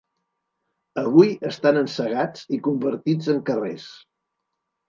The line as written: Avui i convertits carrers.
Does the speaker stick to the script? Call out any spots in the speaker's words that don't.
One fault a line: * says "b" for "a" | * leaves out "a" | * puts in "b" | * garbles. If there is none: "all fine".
* puts in "estan encegats"
* puts in "en"